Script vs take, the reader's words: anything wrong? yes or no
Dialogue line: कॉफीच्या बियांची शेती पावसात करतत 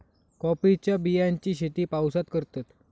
no